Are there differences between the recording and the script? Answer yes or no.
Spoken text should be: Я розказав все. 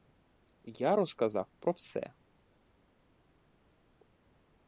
yes